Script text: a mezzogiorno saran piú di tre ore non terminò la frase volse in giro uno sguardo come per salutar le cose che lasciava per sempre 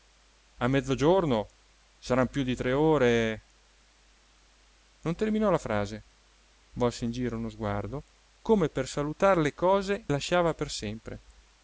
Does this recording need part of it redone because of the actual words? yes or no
yes